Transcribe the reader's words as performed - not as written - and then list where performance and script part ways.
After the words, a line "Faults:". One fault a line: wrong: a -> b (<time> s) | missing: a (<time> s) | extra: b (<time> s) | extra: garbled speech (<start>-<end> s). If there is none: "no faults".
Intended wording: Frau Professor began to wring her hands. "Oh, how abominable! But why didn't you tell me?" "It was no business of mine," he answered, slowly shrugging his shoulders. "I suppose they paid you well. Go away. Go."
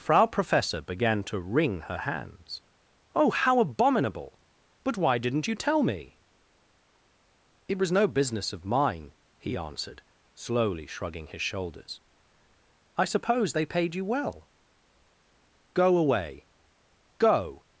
Frau Professor began to wring her hands. "Oh, how abominable! But why didn't you tell me?" "It was no business of mine," he answered, slowly shrugging his shoulders. "I suppose they paid you well. Go away. Go."
Faults:
no faults